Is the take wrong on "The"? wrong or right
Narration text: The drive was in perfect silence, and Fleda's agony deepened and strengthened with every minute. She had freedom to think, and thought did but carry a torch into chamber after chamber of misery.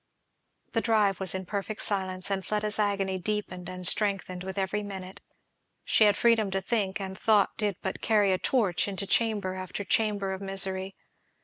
right